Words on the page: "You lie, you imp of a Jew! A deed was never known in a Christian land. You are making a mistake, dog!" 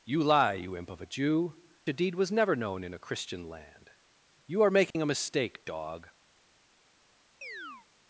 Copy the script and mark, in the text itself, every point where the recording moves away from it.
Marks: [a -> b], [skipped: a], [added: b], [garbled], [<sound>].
"You lie, you imp of a Jew! A deed was never known in a Christian land. You are making [dropout] a mistake, dog!" [chirp]